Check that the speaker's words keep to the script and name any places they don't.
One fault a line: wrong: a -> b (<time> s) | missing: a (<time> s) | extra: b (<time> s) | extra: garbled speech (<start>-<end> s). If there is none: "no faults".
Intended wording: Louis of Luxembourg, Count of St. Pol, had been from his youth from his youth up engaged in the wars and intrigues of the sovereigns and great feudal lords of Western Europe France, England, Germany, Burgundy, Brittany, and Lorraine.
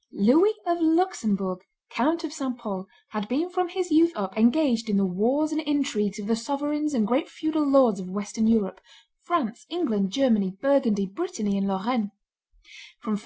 missing: from his youth (4.1 s)